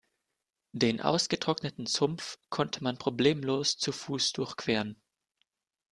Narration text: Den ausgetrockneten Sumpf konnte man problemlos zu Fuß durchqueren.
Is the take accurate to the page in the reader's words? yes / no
yes